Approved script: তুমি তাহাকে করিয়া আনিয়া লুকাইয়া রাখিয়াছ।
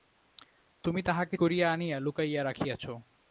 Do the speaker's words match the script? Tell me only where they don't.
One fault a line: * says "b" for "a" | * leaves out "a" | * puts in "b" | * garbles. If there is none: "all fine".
all fine